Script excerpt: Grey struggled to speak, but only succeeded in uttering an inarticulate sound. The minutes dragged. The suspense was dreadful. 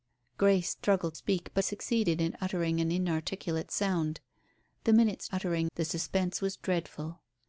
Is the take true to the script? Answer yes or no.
no